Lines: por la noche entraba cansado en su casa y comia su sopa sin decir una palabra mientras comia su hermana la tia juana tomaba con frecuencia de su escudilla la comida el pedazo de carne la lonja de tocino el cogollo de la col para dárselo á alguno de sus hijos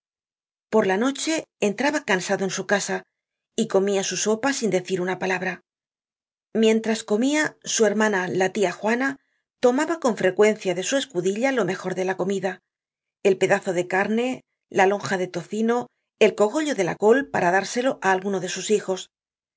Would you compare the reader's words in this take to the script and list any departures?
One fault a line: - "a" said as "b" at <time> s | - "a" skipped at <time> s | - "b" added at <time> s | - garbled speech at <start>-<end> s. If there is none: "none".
- "lo mejor de" added at 11.5 s